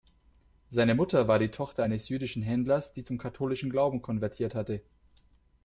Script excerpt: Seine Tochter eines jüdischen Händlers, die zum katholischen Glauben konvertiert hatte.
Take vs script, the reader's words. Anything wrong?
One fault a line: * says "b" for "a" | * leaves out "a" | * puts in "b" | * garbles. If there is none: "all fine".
* puts in "Mutter war die"